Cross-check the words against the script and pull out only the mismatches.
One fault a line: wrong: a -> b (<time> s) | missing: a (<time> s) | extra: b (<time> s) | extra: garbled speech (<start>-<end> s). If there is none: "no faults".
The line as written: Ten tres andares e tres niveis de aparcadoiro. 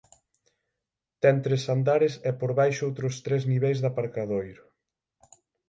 extra: por baixo outros (2.4 s)